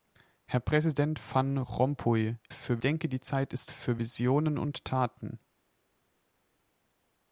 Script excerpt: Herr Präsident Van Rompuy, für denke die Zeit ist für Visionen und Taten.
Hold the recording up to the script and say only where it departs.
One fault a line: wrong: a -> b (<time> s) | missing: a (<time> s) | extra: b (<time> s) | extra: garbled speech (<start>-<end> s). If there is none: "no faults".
no faults